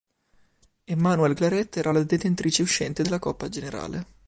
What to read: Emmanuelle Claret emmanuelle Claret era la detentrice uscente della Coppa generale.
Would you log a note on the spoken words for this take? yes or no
yes